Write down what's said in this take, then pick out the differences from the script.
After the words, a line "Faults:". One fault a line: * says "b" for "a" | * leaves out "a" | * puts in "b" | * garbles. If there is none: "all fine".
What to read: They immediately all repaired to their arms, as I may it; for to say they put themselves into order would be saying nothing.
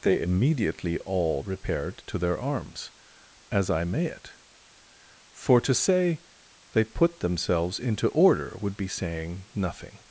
They immediately all repaired to their arms, as I may it; for to say they put themselves into order would be saying nothing.
Faults:
all fine